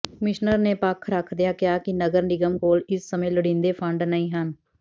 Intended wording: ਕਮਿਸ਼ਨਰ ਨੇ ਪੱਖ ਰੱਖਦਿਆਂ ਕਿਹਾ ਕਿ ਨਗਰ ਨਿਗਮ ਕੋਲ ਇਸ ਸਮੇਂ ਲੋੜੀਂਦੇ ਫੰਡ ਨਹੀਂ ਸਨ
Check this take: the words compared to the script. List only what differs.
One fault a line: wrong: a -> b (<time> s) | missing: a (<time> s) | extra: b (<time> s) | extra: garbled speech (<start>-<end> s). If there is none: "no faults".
wrong: ਸਨ -> ਹਨ (4.3 s)